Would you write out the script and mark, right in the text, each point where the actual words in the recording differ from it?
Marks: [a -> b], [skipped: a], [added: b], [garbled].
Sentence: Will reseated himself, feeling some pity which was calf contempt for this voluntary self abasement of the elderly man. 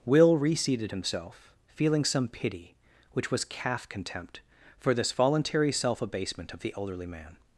Will reseated himself, feeling some pity which was calf contempt for this voluntary self abasement of the elderly man.